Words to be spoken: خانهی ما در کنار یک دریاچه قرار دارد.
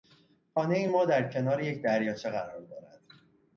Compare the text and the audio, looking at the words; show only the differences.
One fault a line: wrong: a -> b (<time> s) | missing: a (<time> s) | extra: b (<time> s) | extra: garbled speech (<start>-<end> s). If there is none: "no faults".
no faults